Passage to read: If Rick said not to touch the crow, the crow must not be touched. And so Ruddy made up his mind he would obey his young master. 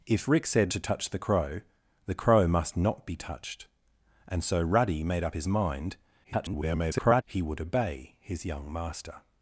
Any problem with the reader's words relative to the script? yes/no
yes